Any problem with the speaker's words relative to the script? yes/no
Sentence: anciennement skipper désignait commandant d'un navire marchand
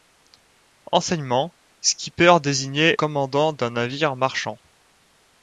no